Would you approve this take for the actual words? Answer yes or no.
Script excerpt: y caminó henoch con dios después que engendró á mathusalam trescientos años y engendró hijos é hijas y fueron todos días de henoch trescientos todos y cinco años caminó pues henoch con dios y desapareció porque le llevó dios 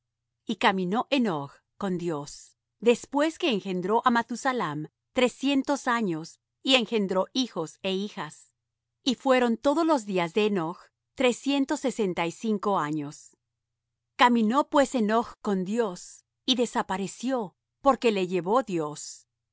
no